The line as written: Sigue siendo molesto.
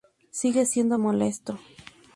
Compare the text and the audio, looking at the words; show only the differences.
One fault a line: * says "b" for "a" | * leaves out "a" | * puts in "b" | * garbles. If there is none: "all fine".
all fine